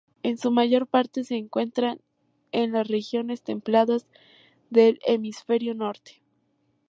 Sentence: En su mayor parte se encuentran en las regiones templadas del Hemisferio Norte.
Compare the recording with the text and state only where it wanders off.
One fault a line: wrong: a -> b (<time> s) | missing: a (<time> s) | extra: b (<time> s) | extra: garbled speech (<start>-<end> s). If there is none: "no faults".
no faults